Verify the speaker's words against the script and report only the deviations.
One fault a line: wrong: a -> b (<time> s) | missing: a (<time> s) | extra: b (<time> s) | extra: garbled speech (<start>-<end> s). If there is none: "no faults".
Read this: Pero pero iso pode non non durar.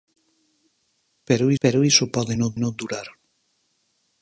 no faults